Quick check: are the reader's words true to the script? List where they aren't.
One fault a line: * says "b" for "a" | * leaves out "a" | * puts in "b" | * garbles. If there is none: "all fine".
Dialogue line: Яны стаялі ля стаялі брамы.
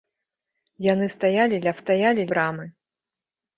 all fine